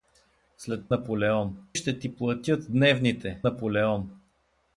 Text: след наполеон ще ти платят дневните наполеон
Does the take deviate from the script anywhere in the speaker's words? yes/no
no